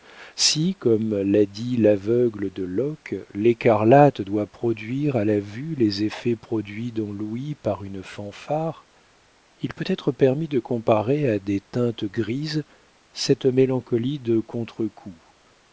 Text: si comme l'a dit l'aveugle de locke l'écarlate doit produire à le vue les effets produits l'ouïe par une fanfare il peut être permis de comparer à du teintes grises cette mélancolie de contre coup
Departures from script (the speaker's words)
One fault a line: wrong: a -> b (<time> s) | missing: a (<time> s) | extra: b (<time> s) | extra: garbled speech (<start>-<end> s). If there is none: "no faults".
wrong: le -> la (5.2 s)
extra: dans (6.9 s)
wrong: du -> des (11.4 s)